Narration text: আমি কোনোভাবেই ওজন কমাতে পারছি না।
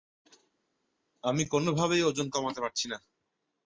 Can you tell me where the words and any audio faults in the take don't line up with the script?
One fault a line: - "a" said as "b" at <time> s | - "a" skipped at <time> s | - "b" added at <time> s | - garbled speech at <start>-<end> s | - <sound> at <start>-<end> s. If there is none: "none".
none